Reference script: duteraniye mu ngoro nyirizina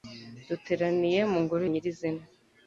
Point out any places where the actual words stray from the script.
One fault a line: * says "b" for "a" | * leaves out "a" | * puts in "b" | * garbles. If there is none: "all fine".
all fine